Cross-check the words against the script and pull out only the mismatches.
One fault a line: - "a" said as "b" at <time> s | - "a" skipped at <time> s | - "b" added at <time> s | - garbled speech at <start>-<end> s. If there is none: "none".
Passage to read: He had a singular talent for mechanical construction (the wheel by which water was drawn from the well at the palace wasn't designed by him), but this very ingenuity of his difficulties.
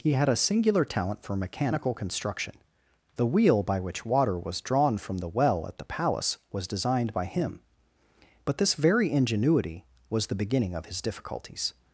- "wasn't" said as "was" at 6.5 s
- "was the beginning" added at 10.1 s